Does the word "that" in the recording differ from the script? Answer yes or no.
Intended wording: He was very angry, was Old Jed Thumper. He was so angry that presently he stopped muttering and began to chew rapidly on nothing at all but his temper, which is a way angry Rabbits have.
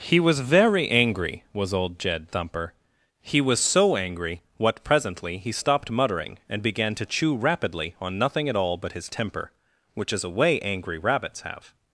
yes